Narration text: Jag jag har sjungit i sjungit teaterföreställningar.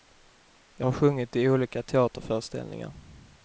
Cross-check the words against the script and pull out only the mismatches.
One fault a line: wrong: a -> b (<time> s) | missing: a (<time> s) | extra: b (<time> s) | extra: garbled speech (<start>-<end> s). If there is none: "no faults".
missing: jag (0.9 s)
wrong: sjungit -> olika (1.5 s)